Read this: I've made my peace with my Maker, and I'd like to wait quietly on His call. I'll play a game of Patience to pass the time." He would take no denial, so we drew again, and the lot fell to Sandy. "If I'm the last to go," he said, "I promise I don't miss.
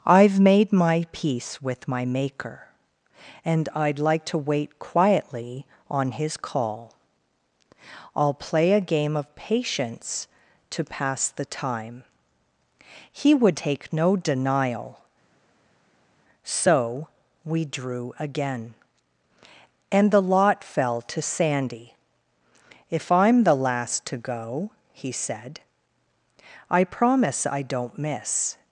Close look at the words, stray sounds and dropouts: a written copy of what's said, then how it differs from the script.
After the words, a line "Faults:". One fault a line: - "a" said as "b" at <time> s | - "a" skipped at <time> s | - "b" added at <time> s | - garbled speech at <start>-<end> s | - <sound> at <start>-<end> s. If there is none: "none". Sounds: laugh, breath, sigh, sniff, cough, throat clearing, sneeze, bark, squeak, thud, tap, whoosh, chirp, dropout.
I've made my peace with my Maker, and I'd like to wait quietly on His call. I'll play a game of Patience to pass the time." He would take no denial, so we drew again, and the lot fell to Sandy. "If I'm the last to go," he said, "I promise I don't miss.
Faults:
none